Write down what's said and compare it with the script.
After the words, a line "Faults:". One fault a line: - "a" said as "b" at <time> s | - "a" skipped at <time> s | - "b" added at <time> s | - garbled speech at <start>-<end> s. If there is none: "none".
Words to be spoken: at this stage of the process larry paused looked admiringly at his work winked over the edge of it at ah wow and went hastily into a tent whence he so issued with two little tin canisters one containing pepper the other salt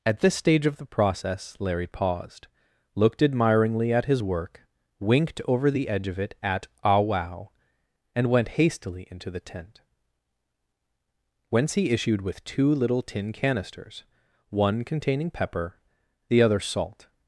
at this stage of the process larry paused looked admiringly at his work winked over the edge of it at ah wow and went hastily into the tent whence he issued with two little tin canisters one containing pepper the other salt
Faults:
- "a" said as "the" at 9.3 s
- "so" skipped at 11.9 s